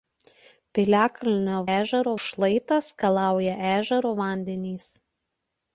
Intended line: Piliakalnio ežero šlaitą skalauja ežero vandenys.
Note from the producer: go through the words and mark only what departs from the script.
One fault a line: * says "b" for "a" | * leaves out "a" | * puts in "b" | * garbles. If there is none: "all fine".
all fine